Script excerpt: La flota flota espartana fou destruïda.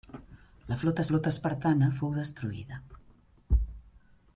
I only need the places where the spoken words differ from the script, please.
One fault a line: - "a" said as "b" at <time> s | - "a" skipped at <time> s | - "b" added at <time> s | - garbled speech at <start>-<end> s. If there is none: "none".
none